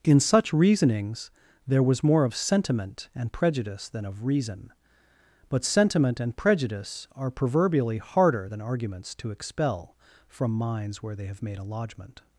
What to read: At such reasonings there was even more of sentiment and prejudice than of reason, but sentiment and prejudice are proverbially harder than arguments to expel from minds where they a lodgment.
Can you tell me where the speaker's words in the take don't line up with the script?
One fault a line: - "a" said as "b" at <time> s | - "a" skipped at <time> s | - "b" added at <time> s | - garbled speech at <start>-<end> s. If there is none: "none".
- "At" said as "In" at 0.0 s
- "even" skipped at 2.0 s
- "have made" added at 11.3 s